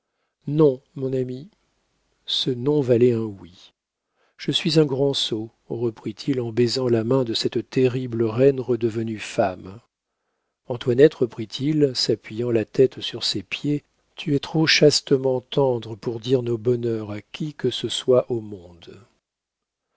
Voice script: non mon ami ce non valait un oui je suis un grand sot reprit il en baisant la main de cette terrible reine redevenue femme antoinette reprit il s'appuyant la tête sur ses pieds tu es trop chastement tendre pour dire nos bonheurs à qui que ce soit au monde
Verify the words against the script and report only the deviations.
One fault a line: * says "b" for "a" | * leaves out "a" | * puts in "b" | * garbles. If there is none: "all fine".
all fine